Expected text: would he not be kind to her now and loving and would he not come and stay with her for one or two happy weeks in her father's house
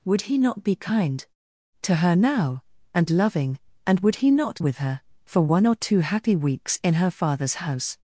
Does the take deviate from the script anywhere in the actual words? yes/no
yes